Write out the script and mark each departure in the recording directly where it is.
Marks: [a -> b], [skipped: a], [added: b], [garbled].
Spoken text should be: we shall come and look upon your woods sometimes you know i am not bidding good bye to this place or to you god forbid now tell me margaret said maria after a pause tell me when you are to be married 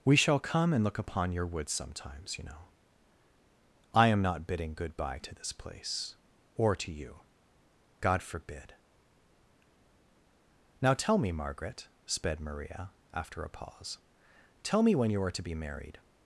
we shall come and look upon your woods sometimes you know i am not bidding good bye to this place or to you god forbid now tell me margaret [said -> sped] maria after a pause tell me when you are to be married